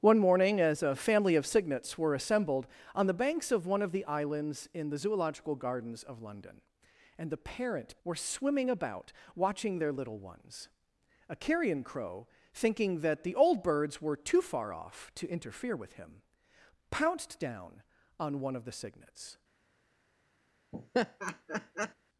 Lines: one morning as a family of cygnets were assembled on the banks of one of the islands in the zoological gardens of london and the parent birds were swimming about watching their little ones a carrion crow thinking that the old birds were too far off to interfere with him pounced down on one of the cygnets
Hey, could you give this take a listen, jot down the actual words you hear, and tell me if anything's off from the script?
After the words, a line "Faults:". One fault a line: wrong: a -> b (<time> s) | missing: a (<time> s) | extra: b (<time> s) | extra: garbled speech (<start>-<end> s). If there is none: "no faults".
one morning as a family of cygnets were assembled on the banks of one of the islands in the zoological gardens of london and the parent were swimming about watching their little ones a carrion crow thinking that the old birds were too far off to interfere with him pounced down on one of the cygnets
Faults:
missing: birds (8.0 s)